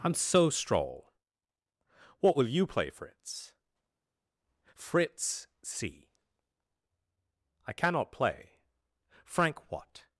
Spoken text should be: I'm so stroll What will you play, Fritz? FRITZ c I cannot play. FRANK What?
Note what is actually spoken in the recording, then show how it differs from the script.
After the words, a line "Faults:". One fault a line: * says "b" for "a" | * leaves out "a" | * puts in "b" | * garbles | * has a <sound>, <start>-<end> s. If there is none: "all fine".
I'm so stroll What will you play, Fritz? FRITZ c I cannot play. FRANK What?
Faults:
all fine